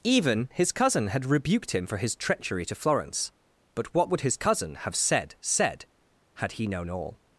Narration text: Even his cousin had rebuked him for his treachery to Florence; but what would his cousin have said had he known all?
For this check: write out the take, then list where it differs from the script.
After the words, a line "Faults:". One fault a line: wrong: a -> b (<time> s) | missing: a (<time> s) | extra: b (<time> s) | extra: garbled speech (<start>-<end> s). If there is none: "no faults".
Even his cousin had rebuked him for his treachery to Florence; but what would his cousin have said said had he known all?
Faults:
extra: said (5.4 s)